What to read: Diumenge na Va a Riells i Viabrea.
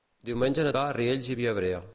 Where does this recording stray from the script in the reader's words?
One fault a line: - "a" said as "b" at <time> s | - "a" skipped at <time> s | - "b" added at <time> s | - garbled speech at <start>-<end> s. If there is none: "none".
none